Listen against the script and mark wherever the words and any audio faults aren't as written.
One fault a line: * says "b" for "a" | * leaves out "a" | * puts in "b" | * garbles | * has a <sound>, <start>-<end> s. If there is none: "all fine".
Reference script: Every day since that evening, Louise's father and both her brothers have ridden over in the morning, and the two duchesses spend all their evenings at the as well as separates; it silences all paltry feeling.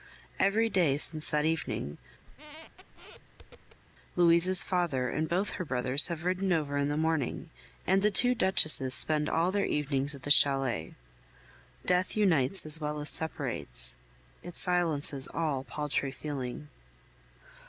* has a squeak, 2.3-3.8 s
* puts in "chalet Death unites"